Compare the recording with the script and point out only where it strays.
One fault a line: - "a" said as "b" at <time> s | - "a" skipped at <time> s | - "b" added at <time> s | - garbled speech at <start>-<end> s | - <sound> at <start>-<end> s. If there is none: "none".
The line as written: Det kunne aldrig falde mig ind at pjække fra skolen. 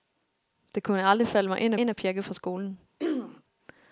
- "ind" added at 1.8 s
- throat clearing at 3.0-3.4 s